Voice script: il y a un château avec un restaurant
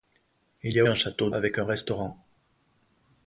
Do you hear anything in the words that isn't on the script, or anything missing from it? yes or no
no